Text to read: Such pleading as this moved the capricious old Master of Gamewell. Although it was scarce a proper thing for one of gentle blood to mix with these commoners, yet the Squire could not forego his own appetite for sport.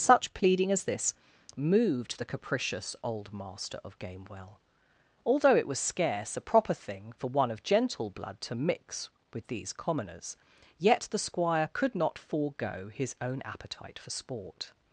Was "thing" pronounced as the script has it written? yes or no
yes